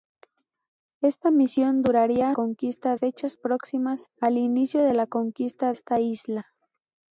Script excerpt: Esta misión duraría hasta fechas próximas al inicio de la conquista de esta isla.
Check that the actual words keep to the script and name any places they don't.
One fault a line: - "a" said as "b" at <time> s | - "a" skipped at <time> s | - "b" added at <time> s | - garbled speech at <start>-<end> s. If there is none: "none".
- "hasta" said as "conquista" at 2.3 s
- "de" skipped at 5.7 s